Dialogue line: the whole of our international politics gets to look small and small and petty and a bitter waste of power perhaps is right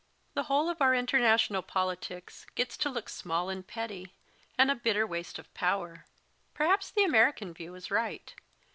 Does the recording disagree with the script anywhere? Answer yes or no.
yes